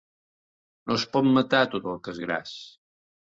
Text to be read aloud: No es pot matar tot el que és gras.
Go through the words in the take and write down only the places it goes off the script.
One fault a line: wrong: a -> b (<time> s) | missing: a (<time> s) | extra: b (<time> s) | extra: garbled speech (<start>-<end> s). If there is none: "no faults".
no faults